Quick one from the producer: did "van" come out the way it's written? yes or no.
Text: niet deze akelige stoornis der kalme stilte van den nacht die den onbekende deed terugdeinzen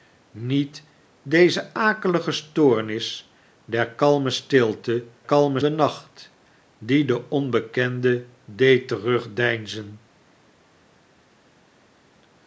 no